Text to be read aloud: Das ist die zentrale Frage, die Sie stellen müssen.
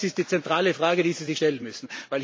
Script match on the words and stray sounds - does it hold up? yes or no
no